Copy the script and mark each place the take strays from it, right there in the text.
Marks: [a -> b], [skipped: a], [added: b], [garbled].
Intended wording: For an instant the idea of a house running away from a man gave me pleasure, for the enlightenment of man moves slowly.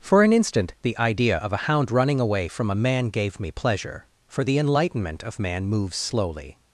For an instant the idea of a [house -> hound] running away from a man gave me pleasure, for the enlightenment of man moves slowly.